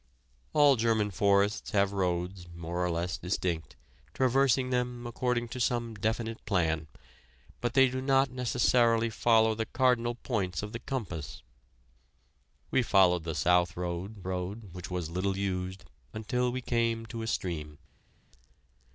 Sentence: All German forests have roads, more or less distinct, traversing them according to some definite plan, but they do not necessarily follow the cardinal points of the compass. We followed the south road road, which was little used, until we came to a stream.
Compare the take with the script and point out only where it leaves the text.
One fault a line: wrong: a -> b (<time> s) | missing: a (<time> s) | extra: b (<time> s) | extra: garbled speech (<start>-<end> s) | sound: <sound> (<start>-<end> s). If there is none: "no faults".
no faults